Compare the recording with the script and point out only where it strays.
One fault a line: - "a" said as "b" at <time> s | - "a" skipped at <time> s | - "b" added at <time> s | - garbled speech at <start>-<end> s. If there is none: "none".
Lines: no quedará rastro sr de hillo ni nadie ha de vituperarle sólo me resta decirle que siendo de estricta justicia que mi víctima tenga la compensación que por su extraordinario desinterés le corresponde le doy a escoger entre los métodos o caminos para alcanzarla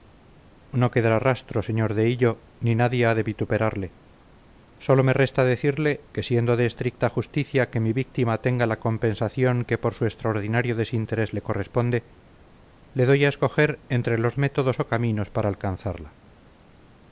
none